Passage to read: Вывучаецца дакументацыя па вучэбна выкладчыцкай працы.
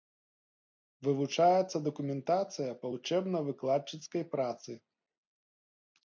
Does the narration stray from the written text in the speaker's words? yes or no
no